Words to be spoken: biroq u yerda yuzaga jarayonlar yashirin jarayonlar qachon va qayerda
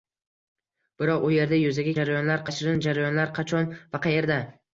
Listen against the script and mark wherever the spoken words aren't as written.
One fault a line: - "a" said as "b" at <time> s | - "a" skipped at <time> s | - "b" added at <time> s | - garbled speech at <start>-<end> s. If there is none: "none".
none